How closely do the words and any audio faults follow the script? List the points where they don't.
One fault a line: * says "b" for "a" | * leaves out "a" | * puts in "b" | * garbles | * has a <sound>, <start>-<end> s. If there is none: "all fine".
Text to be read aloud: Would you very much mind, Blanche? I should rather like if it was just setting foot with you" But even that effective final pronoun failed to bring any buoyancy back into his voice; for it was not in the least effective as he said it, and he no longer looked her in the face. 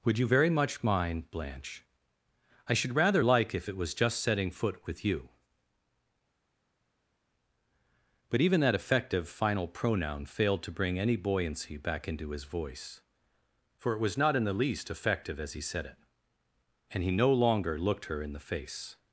all fine